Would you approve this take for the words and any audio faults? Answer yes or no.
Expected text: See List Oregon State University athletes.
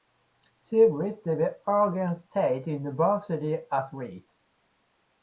no